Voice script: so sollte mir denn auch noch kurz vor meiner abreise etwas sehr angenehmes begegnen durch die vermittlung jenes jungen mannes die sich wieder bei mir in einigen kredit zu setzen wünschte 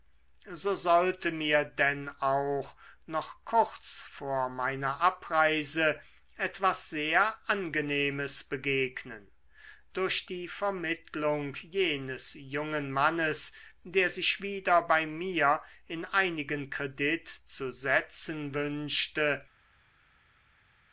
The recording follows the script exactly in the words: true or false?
false